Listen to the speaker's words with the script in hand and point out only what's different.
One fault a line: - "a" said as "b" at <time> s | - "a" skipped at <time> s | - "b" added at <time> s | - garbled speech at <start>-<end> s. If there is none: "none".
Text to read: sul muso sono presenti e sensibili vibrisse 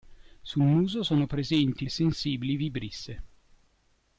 none